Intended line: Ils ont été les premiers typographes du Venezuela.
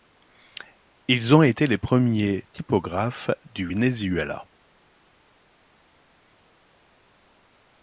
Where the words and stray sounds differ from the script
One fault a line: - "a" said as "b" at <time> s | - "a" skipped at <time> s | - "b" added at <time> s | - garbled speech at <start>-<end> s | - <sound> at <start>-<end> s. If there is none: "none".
none